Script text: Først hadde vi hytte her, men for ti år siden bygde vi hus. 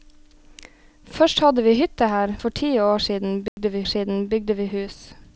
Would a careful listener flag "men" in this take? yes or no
yes